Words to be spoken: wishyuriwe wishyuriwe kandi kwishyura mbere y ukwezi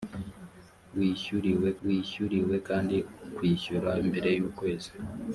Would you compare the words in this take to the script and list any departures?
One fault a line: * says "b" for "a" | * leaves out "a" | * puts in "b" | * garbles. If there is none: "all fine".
all fine